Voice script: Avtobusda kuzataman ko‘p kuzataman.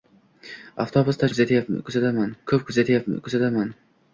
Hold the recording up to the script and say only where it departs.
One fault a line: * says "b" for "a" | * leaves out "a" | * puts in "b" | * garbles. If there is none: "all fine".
all fine